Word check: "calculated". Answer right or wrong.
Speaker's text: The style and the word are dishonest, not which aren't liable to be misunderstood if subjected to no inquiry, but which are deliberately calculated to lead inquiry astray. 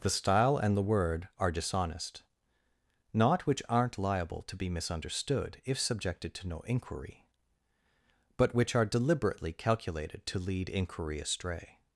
right